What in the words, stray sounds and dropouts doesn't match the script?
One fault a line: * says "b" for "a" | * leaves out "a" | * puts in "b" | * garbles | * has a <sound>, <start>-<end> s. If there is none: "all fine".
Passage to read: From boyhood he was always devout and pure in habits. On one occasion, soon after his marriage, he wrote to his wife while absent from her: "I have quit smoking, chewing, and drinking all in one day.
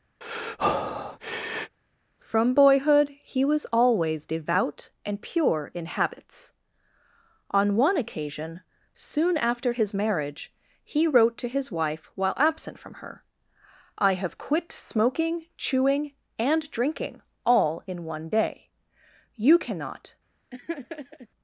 * has a breath, 0.2-1.8 s
* puts in "You cannot"
* has a laugh, 20.5-21.3 s